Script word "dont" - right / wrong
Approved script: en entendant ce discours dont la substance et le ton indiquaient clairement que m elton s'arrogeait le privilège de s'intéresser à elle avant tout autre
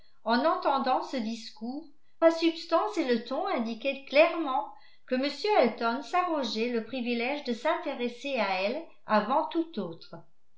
wrong